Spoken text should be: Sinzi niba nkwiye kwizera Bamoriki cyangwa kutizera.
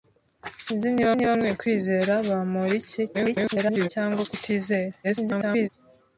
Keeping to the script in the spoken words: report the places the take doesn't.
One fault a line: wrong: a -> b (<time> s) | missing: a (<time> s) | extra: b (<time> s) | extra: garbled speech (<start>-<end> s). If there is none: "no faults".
extra: niba (1.1 s)
extra: garbled speech (3.1-3.9 s)
extra: garbled speech (5.0-5.7 s)